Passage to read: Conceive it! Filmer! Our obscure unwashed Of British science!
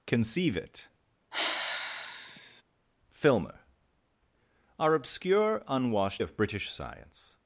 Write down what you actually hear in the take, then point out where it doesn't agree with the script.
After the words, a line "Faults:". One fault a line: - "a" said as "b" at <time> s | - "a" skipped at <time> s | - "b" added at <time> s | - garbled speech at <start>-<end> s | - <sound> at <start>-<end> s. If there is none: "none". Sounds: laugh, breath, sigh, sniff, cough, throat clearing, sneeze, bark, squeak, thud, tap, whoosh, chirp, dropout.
Conceive it! Filmer! Our obscure unwashed Of British science!
Faults:
- sigh at 1.3-2.6 s